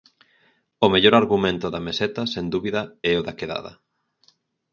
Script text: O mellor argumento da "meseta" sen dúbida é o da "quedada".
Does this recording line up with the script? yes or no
yes